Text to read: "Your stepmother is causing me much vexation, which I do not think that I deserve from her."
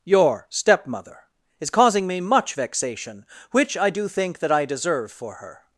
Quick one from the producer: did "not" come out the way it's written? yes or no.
no